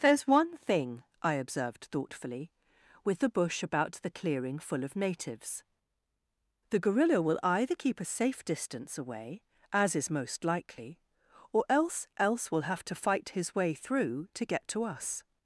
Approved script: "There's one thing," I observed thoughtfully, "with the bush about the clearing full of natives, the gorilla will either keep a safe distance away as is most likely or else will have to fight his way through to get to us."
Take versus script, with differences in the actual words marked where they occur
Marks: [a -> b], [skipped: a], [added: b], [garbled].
"There's one thing," I observed thoughtfully, "with the bush about the clearing full of natives, the gorilla will either keep a safe distance away as is most likely or else [added: else] will have to fight his way through to get to us."